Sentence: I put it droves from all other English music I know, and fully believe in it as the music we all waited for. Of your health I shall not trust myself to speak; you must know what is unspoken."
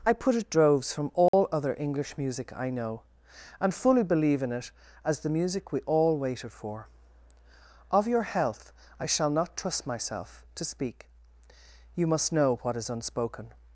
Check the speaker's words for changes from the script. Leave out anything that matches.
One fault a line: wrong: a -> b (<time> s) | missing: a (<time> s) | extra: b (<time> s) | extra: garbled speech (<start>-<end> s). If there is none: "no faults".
no faults